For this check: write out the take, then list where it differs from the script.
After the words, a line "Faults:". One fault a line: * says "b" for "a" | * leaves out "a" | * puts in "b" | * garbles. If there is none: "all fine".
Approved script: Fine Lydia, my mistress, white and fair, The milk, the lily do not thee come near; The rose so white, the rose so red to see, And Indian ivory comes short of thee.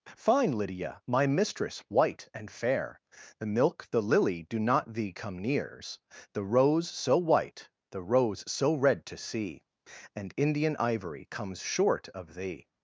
Fine Lydia, my mistress, white and fair, The milk, the lily do not thee come nears; The rose so white, the rose so red to see, And Indian ivory comes short of thee.
Faults:
* says "nears" for "near"